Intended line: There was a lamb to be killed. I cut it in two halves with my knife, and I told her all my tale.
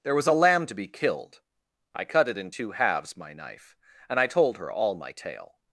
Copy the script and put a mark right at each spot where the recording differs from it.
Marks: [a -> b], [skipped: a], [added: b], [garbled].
There was a lamb to be killed. I cut it in two halves [skipped: with] my knife, and I told her all my tale.